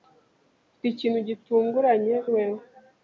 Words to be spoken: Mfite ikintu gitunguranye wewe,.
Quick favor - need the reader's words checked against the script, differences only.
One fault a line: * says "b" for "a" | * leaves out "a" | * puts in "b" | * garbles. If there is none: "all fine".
all fine